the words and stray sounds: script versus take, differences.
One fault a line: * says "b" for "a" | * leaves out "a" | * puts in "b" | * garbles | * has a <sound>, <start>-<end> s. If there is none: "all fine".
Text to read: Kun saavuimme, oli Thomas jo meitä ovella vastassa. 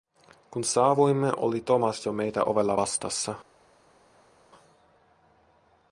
all fine